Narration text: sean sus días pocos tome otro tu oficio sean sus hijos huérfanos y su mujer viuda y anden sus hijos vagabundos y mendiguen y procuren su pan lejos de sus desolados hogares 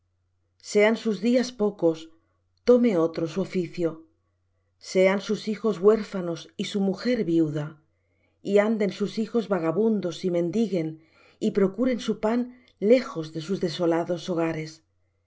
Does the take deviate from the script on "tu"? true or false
true